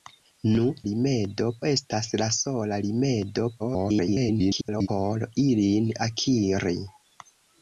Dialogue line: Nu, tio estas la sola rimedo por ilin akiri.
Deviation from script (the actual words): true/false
true